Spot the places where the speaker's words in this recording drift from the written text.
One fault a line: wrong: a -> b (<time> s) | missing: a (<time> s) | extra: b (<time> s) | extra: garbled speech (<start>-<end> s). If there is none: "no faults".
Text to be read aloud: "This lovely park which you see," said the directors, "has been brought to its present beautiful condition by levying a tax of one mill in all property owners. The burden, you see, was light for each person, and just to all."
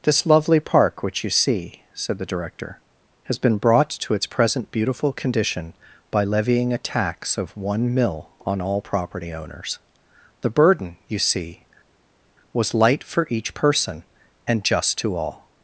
wrong: directors -> director (2.2 s)
wrong: in -> on (8.4 s)